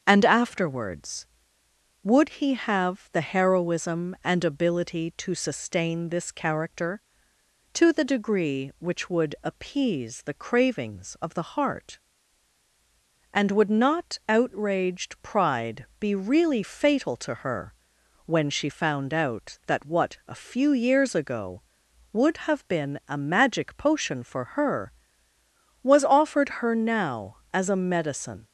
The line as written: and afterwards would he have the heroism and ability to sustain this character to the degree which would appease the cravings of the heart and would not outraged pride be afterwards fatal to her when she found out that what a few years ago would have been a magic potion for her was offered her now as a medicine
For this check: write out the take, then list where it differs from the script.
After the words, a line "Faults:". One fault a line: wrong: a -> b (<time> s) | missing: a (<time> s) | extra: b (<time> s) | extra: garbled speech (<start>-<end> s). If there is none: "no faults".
and afterwards would he have the heroism and ability to sustain this character to the degree which would appease the cravings of the heart and would not outraged pride be really fatal to her when she found out that what a few years ago would have been a magic potion for her was offered her now as a medicine
Faults:
wrong: afterwards -> really (16.2 s)